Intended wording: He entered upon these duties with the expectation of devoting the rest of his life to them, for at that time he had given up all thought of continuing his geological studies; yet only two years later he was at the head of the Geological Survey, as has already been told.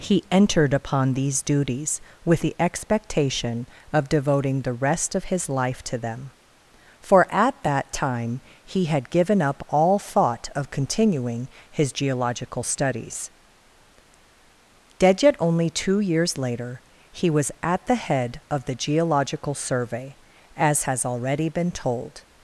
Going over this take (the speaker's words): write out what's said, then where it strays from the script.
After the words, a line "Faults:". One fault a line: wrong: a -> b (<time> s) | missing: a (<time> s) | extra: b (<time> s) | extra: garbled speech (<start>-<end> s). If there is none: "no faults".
He entered upon these duties with the expectation of devoting the rest of his life to them, for at that time he had given up all thought of continuing his geological studies; dead yet only two years later he was at the head of the Geological Survey, as has already been told.
Faults:
extra: dead (15.0 s)